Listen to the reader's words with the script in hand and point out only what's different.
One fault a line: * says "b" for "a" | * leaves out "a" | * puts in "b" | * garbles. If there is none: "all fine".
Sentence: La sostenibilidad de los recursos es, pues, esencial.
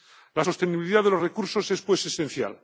all fine